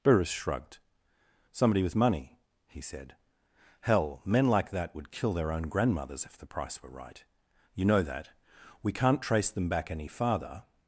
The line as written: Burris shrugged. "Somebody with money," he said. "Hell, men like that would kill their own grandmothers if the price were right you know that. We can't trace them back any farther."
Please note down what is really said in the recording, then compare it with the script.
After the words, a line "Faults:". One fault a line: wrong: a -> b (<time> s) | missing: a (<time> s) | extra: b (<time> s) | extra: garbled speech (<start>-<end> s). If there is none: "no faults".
Burris shrugged. "Somebody with money," he said. "Hell, men like that would kill their own grandmothers if the price were right you know that. We can't trace them back any farther."
Faults:
no faults